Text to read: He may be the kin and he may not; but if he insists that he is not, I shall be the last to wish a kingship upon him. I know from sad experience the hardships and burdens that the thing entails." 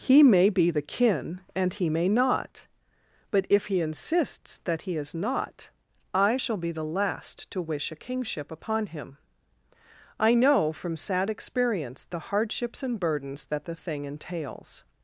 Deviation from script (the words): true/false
false